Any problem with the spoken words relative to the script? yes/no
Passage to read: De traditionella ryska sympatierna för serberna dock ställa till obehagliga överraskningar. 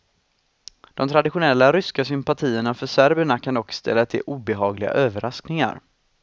yes